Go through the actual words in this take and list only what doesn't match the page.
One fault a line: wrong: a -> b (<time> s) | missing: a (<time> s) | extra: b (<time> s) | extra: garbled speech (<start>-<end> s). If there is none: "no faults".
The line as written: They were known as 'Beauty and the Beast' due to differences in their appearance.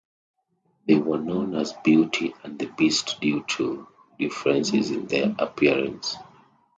no faults